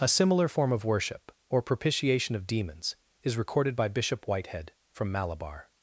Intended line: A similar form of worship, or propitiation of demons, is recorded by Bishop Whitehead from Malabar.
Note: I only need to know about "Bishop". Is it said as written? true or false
true